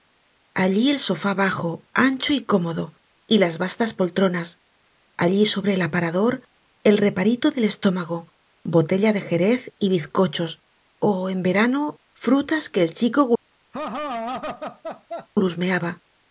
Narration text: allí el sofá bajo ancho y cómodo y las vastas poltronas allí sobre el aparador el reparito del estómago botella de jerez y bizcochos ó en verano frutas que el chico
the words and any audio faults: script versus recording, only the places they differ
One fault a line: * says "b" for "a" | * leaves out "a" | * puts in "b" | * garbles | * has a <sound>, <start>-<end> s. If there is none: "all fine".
* has a laugh, 13.7-15.3 s